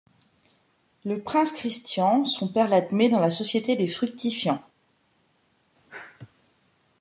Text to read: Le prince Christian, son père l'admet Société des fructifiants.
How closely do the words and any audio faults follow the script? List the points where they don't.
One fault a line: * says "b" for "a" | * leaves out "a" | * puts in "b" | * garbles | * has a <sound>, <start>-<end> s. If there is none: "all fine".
* puts in "dans la"